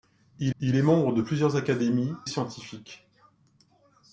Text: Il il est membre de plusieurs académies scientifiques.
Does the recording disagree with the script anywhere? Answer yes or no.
no